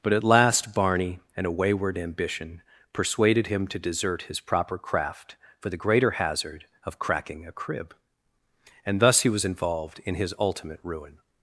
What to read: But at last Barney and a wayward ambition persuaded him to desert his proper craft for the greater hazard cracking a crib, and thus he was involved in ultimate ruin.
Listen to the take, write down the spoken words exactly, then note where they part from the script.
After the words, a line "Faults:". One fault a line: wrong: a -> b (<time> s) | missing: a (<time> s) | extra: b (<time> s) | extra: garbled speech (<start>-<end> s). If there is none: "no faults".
But at last Barney and a wayward ambition persuaded him to desert his proper craft for the greater hazard of cracking a crib, and thus he was involved in his ultimate ruin.
Faults:
extra: of (6.8 s)
extra: his (10.1 s)